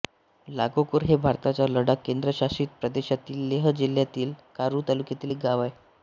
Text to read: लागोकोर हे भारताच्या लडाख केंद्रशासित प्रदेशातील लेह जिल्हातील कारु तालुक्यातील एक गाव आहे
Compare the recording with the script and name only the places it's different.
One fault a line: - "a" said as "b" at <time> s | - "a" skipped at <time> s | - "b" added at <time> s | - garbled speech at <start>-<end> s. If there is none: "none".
none